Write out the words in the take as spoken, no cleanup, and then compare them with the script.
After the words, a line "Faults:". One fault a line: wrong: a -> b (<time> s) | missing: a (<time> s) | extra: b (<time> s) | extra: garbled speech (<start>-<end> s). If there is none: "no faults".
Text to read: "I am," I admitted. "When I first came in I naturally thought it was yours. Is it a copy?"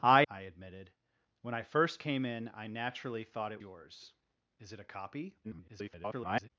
"I," I admitted. "When I first came in I naturally thought it yours. Is it a copy?" [garbled]
Faults:
missing: am (0.2 s)
missing: was (3.6 s)
extra: garbled speech (5.4-6.5 s)